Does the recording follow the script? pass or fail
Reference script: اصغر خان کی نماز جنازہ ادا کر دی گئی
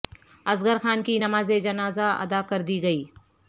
pass